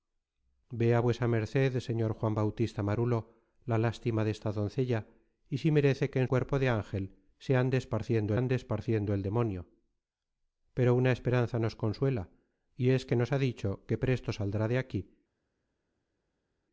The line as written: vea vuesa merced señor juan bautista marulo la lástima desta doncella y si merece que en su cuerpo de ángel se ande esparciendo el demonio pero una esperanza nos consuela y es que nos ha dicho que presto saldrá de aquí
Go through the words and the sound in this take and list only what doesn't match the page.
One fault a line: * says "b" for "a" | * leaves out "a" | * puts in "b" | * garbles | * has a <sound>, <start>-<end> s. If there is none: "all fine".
* leaves out "su"
* puts in "ande esparciendo"